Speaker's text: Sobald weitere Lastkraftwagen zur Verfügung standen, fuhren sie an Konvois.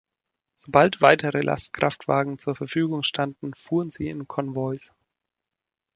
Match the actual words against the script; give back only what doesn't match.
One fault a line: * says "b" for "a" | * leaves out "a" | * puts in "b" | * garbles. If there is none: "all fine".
* says "in" for "an"